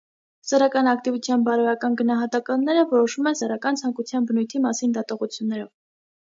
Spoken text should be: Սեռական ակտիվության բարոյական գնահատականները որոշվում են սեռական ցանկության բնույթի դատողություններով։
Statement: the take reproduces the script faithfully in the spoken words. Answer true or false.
false